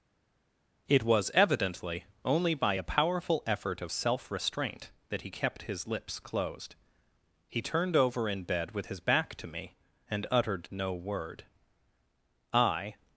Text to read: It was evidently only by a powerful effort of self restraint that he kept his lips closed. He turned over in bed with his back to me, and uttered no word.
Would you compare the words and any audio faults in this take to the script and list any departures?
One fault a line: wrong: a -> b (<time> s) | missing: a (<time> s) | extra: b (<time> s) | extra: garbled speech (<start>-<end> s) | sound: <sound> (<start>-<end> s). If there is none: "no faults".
extra: I (12.5 s)